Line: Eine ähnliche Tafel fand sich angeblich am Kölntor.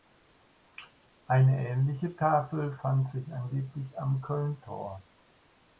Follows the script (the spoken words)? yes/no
yes